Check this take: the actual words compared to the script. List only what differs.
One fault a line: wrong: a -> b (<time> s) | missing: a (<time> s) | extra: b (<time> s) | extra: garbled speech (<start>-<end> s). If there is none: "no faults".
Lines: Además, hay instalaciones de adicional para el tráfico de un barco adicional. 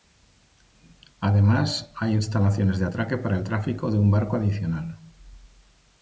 wrong: adicional -> atraque (2.8 s)